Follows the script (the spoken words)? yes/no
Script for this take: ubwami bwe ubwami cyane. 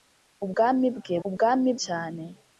yes